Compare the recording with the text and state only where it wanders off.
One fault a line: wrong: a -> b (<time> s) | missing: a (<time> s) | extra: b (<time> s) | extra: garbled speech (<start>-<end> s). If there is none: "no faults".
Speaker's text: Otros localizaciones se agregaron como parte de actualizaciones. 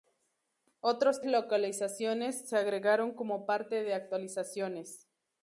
no faults